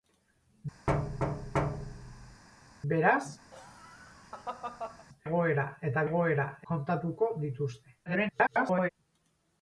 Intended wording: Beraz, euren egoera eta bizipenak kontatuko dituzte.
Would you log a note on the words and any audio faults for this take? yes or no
yes